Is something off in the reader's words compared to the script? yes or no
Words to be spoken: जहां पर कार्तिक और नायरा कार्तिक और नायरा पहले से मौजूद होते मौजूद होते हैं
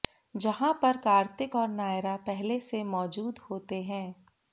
yes